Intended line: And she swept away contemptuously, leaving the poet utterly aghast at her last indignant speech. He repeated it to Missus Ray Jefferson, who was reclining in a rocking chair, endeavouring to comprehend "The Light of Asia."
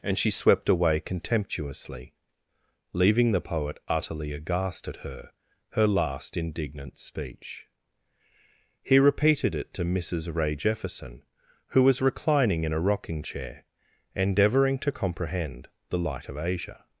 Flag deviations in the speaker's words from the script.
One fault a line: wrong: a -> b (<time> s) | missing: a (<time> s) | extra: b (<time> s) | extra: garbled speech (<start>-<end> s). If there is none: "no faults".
extra: her (5.7 s)